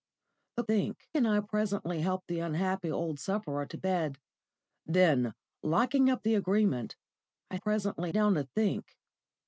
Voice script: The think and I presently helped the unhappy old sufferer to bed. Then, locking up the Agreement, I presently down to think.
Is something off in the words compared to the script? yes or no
no